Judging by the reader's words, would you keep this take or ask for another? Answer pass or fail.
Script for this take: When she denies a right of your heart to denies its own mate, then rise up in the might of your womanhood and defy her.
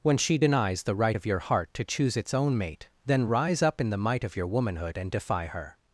fail